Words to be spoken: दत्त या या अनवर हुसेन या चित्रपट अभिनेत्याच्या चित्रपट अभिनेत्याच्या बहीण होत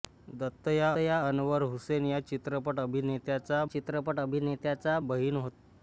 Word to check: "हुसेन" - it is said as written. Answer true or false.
true